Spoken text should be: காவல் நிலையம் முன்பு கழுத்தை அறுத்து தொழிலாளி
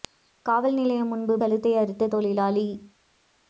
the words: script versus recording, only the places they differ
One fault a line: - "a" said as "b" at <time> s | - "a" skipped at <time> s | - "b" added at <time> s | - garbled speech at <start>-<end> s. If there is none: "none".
none